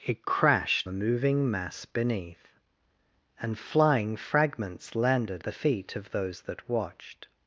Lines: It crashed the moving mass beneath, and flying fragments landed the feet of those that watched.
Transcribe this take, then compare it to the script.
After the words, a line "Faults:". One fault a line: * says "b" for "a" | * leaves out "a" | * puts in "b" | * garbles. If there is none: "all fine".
It crashed the moving mass beneath, and flying fragments landed the feet of those that watched.
Faults:
all fine